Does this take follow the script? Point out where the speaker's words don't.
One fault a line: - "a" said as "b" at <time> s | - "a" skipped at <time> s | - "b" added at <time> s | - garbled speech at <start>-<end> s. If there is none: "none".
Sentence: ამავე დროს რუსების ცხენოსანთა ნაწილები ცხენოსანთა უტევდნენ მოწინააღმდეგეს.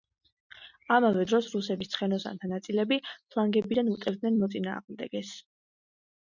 - "ცხენოსანთა" said as "ფლანგებიდან" at 3.1 s